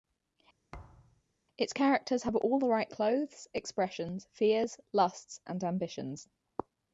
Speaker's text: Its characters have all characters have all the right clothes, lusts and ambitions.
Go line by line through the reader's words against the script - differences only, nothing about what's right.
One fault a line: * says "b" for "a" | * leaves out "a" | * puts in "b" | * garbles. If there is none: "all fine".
* leaves out "characters have all"
* puts in "expressions fears"